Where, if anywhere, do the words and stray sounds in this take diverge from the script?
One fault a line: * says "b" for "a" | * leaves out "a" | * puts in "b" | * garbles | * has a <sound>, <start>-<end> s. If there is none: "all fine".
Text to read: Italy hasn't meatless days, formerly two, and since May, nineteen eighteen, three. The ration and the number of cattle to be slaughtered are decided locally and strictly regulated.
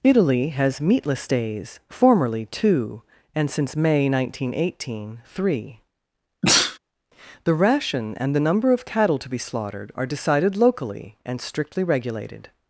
* says "has" for "hasn't"
* has a sneeze, 6.4-6.8 s